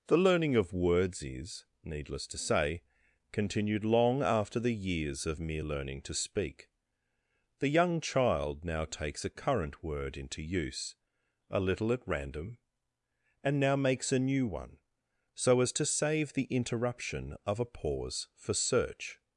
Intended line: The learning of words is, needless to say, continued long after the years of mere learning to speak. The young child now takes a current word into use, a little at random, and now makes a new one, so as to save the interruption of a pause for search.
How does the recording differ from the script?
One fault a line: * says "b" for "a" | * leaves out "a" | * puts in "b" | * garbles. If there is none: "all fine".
all fine